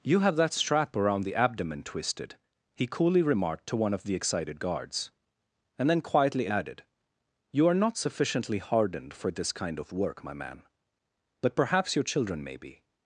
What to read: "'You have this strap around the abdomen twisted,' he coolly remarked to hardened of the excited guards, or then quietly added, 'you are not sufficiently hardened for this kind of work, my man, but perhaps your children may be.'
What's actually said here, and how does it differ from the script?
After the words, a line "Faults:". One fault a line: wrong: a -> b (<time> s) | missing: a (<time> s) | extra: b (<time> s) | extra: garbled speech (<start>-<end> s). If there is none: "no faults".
"'You have that strap around the abdomen twisted,' he coolly remarked to one of the excited guards, and then quietly added, 'you are not sufficiently hardened for this kind of work, my man, but perhaps your children may be.'
Faults:
wrong: this -> that (0.3 s)
wrong: hardened -> one (3.8 s)
wrong: or -> and (5.8 s)